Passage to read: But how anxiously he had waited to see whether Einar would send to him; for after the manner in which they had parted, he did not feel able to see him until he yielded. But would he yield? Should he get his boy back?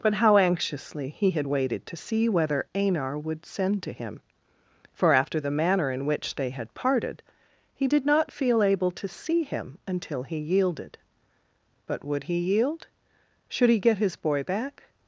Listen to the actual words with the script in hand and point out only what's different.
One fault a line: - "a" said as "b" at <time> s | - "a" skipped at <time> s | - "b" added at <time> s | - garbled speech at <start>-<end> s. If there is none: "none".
none